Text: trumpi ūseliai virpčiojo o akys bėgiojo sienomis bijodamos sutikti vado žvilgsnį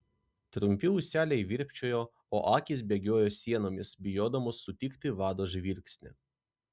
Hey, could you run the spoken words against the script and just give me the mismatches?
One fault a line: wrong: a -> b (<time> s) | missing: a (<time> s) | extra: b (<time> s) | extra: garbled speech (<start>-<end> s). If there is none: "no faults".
no faults